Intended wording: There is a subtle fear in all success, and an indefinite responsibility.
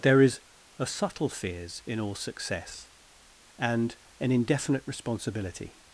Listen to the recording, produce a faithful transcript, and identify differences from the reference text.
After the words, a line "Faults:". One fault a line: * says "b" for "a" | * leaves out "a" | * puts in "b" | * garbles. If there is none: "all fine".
There is a subtle fears in all success, and an indefinite responsibility.
Faults:
* says "fears" for "fear"